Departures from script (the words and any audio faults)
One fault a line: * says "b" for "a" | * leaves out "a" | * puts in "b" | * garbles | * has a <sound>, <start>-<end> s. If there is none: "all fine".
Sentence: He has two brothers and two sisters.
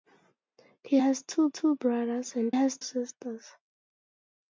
* puts in "two"
* says "has" for "two"